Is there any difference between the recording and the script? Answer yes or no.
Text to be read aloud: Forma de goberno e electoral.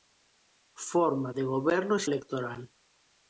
no